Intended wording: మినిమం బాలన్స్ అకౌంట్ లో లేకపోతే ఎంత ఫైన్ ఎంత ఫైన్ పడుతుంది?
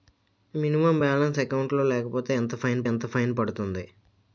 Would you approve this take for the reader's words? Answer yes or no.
yes